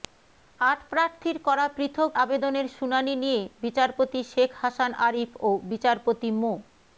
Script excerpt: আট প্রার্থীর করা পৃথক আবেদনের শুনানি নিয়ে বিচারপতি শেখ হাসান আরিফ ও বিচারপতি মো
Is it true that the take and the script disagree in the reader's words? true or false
false